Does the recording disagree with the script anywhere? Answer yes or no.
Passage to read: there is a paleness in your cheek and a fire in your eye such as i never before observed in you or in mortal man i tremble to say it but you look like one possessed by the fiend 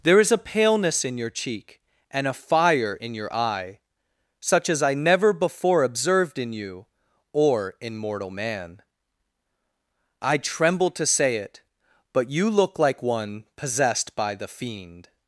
no